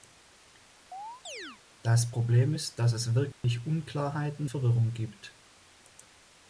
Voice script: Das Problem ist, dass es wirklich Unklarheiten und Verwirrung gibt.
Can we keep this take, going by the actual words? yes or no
no